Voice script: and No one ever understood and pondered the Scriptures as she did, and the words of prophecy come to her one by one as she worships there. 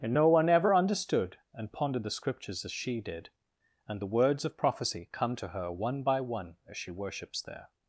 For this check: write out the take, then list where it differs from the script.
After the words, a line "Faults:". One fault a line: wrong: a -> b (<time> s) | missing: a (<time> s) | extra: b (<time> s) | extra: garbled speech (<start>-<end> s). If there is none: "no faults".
and No one ever understood and pondered the Scriptures as she did, and the words of prophecy come to her one by one as she worships there.
Faults:
no faults